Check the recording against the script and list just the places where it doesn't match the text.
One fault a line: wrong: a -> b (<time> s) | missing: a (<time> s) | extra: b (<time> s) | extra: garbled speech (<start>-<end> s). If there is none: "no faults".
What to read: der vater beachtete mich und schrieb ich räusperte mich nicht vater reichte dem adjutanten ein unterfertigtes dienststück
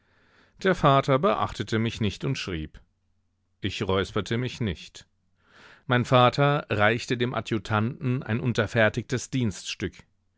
extra: nicht (2.0 s)
extra: mein (5.9 s)